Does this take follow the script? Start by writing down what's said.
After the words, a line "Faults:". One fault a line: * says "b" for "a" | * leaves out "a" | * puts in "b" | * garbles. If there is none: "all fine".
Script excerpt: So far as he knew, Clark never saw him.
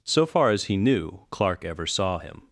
So far as he knew, Clark ever saw him.
Faults:
* says "ever" for "never"